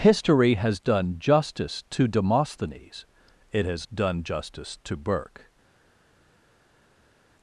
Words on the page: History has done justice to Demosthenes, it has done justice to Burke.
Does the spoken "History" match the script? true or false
true